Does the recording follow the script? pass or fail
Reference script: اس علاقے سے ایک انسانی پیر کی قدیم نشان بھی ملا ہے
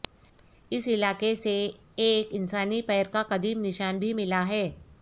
fail